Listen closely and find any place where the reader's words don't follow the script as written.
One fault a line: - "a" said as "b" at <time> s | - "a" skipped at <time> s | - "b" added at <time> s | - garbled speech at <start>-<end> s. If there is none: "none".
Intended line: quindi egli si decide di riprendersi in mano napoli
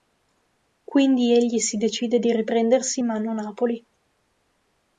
none